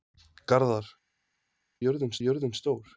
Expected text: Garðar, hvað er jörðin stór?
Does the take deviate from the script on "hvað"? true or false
true